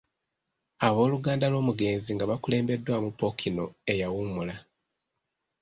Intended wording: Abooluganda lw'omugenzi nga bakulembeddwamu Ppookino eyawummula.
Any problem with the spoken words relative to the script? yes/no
no